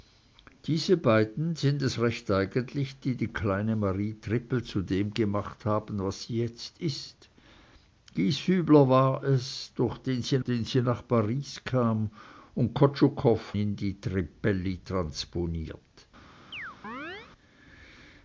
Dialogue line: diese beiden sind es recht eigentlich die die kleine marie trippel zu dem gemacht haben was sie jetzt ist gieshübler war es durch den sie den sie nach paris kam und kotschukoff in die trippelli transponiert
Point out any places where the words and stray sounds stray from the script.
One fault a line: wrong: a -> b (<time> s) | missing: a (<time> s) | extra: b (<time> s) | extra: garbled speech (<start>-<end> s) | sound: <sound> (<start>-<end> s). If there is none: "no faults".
sound: chirp (16.5-17.3 s)